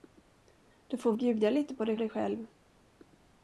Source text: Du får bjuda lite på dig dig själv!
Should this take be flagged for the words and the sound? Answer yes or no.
no